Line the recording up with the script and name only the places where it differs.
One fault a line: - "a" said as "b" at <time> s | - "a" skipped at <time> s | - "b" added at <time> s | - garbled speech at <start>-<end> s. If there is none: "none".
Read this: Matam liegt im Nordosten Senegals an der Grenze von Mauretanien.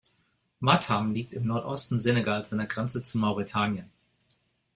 - "von" said as "zu" at 3.0 s